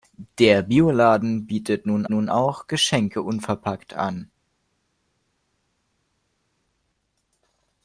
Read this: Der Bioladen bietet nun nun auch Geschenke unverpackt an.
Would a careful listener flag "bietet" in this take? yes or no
no